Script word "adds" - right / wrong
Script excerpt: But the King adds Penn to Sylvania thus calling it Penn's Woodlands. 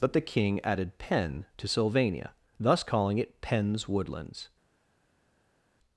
wrong